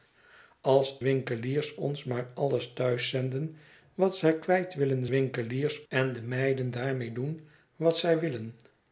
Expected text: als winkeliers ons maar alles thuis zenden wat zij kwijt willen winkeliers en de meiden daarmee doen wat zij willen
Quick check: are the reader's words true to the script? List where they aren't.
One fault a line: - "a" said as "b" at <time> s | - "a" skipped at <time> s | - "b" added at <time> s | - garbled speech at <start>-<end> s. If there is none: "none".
none